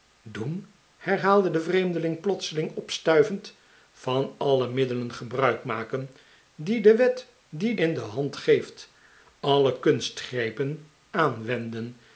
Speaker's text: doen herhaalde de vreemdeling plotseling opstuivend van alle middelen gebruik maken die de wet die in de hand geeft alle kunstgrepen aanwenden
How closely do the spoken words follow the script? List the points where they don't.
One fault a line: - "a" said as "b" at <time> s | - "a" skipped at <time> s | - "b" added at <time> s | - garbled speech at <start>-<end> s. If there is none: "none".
none